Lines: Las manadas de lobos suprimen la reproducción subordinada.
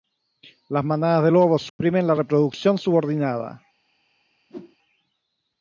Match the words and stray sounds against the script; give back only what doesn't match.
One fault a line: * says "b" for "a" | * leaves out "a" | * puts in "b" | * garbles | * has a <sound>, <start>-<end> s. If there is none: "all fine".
* has a dropout, 1.7-1.8 s
* has a whoosh, 4.5-4.8 s